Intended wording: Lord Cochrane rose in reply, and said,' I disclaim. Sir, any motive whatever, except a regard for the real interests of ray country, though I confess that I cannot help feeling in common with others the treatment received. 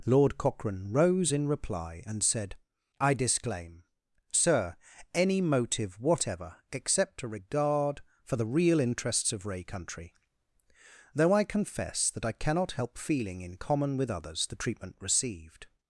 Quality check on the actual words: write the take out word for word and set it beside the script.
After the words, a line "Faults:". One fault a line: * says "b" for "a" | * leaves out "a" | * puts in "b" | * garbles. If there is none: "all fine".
Lord Cochrane rose in reply, and said,' I disclaim. Sir, any motive whatever, except a regard for the real interests of ray country, though I confess that I cannot help feeling in common with others the treatment received.
Faults:
all fine